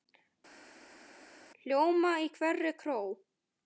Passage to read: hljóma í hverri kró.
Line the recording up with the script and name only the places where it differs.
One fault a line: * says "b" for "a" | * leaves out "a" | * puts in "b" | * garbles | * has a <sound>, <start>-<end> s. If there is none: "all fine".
all fine